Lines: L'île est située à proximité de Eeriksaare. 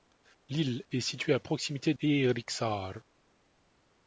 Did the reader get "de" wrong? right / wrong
wrong